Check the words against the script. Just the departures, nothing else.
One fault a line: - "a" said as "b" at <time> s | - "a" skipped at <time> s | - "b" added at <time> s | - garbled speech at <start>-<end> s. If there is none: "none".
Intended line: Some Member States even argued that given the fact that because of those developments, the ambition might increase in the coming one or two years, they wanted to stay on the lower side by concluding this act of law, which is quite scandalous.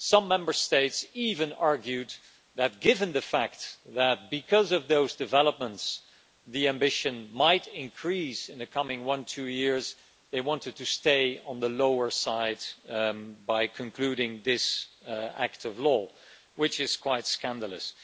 none